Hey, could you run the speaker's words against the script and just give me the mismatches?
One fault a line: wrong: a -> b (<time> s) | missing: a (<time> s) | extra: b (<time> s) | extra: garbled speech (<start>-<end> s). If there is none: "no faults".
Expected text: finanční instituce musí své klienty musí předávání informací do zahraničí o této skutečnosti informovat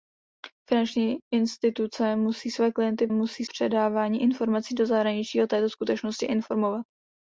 no faults